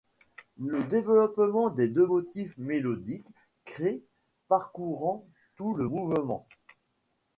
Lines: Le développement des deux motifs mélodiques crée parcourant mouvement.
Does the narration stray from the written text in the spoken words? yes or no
yes